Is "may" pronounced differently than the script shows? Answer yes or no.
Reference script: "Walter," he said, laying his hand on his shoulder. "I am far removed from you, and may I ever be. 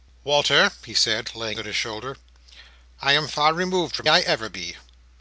yes